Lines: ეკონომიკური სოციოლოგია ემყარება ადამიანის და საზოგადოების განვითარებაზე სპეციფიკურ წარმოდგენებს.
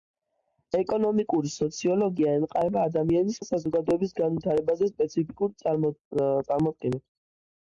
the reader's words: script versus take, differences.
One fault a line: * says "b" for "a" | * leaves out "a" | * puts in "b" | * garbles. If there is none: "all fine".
all fine